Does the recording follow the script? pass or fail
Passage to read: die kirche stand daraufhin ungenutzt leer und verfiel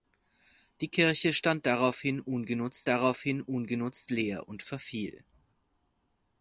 fail